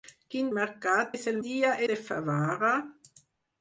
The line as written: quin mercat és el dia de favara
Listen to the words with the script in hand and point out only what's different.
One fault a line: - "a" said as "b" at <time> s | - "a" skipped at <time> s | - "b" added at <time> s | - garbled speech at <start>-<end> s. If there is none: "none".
none